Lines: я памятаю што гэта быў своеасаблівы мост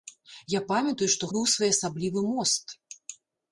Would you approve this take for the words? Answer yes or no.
no